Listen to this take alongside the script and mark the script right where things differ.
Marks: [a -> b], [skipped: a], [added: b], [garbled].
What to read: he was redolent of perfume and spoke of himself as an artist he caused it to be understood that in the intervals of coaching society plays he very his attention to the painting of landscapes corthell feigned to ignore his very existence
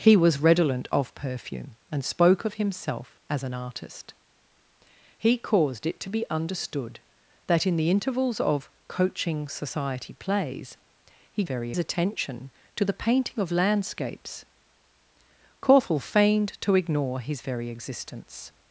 he was redolent of perfume and spoke of himself as an artist he caused it to be understood that in the intervals of coaching society plays he very his attention to the painting of landscapes corthell feigned to ignore his very existence